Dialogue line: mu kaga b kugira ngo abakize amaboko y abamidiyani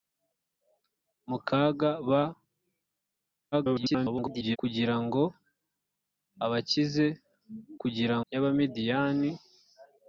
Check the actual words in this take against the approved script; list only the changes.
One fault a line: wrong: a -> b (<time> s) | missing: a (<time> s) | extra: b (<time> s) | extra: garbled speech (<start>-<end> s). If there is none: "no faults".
extra: garbled speech (3.5-4.6 s)
wrong: amaboko -> kugira (7.8 s)